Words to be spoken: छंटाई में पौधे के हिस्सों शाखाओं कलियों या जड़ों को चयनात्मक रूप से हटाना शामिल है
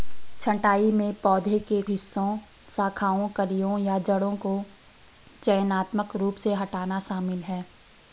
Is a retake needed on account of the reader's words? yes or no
no